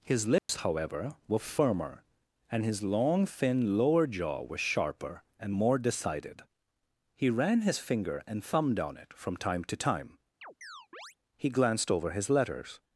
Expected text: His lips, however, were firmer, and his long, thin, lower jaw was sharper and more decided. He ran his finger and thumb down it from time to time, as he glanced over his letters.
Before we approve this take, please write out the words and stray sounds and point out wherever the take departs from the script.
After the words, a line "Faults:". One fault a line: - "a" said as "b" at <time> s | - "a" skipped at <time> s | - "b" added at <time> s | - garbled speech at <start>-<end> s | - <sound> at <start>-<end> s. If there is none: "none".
His lips, however, were firmer, and his long, thin, lower jaw was sharper and more decided. He ran his finger and thumb down it from time to time, he glanced over his letters.
Faults:
- dropout at 0.4-0.5 s
- "as" skipped at 10.2 s
- chirp at 10.4-11.2 s